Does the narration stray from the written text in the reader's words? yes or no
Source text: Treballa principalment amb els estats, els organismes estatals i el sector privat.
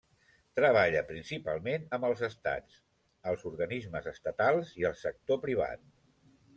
no